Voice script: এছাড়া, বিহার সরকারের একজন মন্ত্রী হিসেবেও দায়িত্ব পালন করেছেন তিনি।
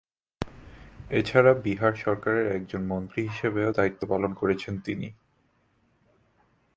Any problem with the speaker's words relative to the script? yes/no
no